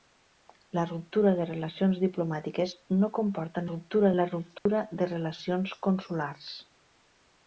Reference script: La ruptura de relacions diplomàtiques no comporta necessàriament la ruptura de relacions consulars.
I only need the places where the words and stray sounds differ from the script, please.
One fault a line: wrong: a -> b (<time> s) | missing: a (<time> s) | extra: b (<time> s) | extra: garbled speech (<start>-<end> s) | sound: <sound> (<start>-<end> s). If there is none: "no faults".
wrong: necessàriament -> ruptura (3.7 s)
sound: dropout (4.6-4.7 s)